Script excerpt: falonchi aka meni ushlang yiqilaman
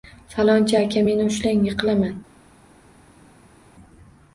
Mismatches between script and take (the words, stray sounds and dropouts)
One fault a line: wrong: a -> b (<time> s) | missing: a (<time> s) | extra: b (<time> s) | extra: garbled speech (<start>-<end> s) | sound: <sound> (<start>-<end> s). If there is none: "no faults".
no faults